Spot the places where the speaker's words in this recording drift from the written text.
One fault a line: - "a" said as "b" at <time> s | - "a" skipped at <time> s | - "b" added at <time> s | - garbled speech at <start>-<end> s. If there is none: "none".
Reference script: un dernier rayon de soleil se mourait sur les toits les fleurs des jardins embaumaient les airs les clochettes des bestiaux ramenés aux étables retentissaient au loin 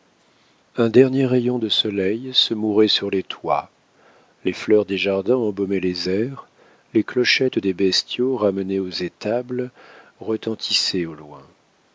none